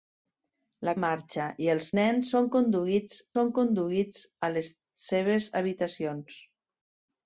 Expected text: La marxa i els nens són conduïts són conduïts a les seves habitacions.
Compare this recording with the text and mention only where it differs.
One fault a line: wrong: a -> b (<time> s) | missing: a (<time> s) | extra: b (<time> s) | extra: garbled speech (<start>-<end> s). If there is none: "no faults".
no faults